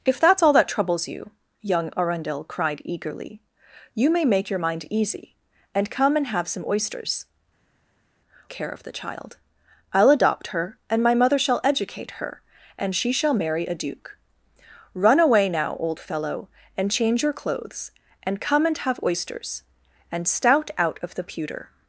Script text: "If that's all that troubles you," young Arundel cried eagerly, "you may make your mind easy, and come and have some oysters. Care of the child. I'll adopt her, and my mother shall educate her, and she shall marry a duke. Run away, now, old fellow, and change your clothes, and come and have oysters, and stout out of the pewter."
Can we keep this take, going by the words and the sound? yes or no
yes